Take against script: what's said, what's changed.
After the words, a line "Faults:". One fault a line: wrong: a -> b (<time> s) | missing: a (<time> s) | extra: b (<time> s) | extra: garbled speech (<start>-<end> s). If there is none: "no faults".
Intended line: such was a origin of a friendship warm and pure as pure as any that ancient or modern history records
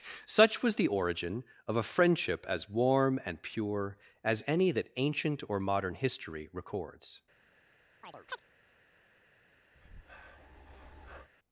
such was the origin of a friendship as warm and pure as any that ancient or modern history records
Faults:
wrong: a -> the (0.8 s)
extra: as (2.5 s)
missing: pure as (4.4 s)